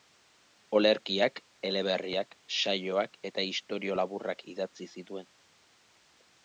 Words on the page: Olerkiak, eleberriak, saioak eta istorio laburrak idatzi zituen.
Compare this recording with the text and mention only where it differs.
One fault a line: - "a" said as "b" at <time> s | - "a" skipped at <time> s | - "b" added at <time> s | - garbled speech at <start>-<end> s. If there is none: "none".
none